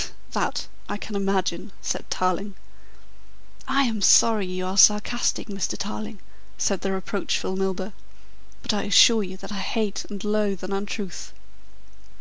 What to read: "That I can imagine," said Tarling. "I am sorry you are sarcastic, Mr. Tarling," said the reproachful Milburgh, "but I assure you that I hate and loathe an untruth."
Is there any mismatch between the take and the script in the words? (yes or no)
no